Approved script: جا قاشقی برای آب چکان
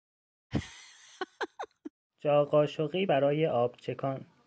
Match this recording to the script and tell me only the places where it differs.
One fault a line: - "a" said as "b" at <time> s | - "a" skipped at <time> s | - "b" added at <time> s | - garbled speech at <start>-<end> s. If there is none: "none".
none